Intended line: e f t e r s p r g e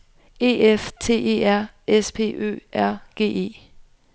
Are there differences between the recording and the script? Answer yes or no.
yes